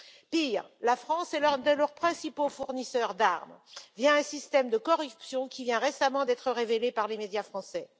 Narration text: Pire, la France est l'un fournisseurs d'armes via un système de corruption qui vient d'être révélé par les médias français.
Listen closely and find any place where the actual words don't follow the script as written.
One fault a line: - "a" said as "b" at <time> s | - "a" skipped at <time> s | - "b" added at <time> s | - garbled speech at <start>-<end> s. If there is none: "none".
- "de leurs principaux" added at 1.6 s
- "récemment" added at 5.8 s